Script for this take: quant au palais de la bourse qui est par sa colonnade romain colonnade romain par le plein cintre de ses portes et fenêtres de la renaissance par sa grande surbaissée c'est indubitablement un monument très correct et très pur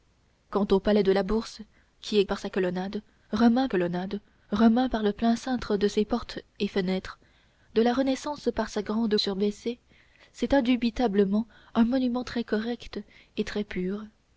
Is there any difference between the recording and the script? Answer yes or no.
no